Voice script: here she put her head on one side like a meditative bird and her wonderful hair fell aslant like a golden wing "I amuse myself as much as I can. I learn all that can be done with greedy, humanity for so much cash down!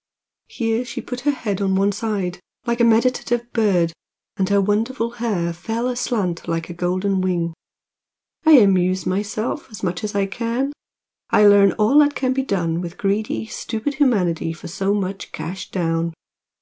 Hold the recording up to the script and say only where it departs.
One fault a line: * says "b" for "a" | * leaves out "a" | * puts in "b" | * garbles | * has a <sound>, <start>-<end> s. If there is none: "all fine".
* puts in "stupid"